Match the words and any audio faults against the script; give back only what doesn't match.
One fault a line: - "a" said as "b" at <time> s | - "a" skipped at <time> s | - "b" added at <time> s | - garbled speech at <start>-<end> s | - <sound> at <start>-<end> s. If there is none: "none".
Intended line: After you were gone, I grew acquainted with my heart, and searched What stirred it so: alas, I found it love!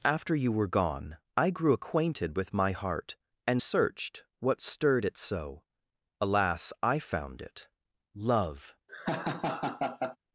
- laugh at 8.9-10.2 s